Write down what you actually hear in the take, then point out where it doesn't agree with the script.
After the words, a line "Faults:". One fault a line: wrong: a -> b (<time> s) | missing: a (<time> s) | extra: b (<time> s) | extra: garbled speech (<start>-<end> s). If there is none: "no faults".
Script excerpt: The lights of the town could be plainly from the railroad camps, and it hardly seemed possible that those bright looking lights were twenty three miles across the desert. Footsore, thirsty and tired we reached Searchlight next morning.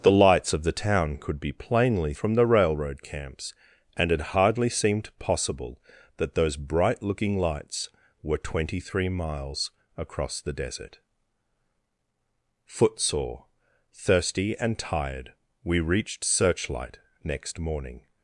The lights of the town could be plainly from the railroad camps, and it hardly seemed possible that those bright looking lights were twenty three miles across the desert. Footsore, thirsty and tired we reached Searchlight next morning.
Faults:
no faults